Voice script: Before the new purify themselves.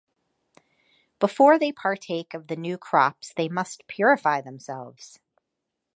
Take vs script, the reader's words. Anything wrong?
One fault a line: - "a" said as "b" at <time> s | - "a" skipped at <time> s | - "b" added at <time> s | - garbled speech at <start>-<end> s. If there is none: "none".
- "they partake of" added at 1.6 s
- "crops they must" added at 2.8 s